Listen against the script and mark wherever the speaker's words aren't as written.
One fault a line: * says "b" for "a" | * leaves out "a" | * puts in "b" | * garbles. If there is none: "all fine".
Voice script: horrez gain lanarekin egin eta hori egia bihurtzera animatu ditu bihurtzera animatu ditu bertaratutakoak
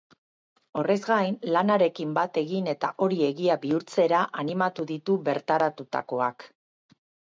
* puts in "bat"
* leaves out "bihurtzera animatu ditu"